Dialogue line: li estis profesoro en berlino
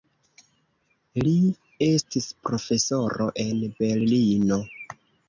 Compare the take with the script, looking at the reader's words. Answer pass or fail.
pass